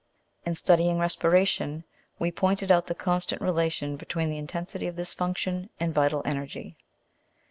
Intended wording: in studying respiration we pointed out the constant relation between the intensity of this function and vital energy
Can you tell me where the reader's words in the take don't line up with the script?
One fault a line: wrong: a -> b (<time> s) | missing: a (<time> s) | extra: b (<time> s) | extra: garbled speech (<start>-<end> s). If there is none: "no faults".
no faults